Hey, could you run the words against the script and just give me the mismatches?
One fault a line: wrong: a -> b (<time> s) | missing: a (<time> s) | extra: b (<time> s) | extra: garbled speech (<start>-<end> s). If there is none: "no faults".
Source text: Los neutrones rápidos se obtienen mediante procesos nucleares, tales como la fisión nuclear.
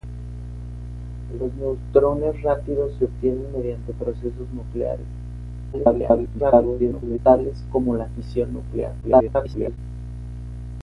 extra: garbled speech (5.7-7.2 s)
extra: garbled speech (9.0-9.8 s)